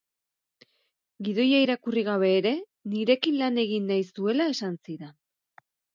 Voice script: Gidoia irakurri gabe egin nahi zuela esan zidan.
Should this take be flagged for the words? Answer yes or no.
yes